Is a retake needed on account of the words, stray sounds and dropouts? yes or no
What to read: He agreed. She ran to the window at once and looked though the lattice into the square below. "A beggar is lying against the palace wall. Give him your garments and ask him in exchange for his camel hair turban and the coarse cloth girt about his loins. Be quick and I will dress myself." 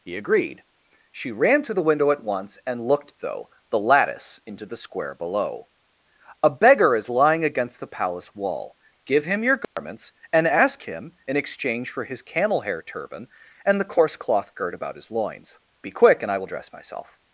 yes